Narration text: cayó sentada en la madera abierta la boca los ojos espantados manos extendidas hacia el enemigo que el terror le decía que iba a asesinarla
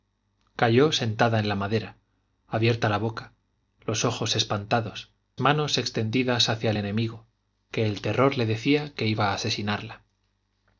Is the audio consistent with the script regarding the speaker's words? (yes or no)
yes